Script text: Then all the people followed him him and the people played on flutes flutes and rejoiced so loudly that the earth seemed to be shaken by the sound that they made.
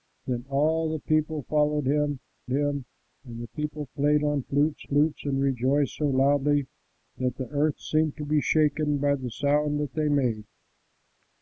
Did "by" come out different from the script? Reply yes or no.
no